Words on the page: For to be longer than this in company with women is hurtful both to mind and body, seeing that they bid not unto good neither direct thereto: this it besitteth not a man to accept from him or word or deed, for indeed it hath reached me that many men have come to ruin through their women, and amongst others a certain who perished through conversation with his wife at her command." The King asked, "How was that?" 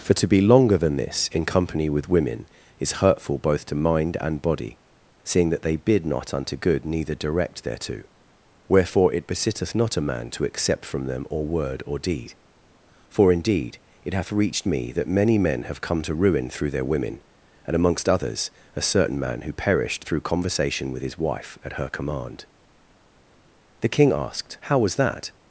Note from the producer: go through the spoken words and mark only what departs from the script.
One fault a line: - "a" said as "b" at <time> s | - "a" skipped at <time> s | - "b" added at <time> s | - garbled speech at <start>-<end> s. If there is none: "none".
- "this" said as "wherefore" at 8.7 s
- "him" said as "them" at 11.1 s
- "man" added at 19.2 s